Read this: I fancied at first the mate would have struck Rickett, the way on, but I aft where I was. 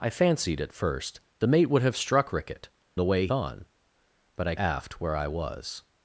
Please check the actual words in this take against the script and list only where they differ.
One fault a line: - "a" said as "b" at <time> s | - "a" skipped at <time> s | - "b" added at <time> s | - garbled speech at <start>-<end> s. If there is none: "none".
none